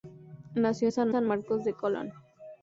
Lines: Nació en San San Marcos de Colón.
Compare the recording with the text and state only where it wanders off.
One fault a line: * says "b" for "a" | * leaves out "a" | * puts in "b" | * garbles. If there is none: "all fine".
all fine